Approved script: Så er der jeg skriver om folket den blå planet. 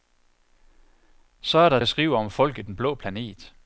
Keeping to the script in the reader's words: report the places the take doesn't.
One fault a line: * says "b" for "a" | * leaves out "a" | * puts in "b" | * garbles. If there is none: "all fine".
all fine